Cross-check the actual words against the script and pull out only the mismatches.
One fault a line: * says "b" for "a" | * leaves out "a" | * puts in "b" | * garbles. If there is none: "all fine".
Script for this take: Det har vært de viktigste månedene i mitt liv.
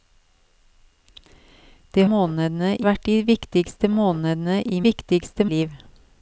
* says "månedene" for "har"
* says "viktigste" for "mitt"